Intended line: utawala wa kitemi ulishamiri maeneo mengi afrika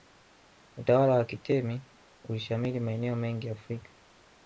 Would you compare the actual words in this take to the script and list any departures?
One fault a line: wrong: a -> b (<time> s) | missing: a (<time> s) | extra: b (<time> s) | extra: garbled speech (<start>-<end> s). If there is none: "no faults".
no faults